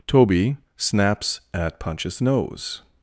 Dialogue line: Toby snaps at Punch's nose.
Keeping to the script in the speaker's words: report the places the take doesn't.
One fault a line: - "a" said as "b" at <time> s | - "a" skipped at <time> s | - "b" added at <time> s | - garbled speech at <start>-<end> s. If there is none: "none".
none